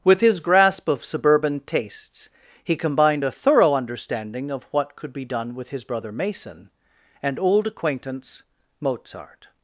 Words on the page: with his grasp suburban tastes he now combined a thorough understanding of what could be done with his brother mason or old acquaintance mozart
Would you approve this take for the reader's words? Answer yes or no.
no